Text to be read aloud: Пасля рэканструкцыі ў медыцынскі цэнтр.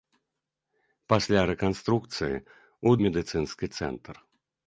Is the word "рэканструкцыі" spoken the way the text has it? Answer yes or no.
yes